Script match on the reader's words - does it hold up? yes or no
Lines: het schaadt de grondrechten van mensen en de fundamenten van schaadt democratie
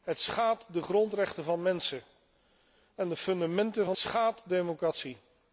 yes